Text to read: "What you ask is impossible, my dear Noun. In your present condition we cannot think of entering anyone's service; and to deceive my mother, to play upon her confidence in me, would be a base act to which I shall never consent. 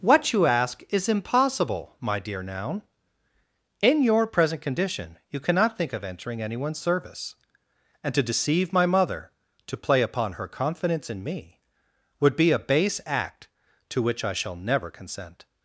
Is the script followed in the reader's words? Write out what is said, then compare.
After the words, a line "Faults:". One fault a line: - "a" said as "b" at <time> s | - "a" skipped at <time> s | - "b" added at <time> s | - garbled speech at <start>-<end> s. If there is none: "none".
"What you ask is impossible, my dear Noun. In your present condition you cannot think of entering anyone's service; and to deceive my mother, to play upon her confidence in me, would be a base act to which I shall never consent.
Faults:
- "we" said as "you" at 5.3 s